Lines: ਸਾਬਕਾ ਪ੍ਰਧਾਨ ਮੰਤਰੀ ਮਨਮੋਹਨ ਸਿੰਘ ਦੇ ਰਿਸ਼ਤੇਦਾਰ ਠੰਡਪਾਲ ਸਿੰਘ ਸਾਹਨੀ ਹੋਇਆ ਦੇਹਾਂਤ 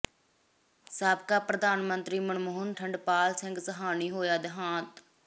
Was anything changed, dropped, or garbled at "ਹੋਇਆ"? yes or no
no